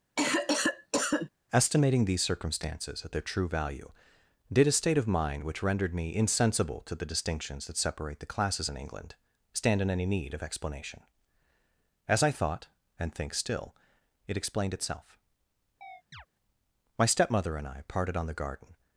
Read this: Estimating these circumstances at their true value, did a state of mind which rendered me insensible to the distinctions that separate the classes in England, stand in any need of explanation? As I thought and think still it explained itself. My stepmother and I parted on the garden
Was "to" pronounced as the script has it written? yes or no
yes